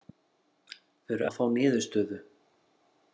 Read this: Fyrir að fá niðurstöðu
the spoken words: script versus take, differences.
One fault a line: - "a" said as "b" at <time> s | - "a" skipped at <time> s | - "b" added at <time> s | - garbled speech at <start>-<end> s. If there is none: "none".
none